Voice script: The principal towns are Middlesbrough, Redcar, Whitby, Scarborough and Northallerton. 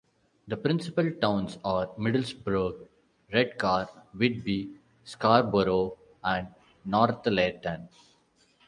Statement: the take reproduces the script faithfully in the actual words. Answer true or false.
true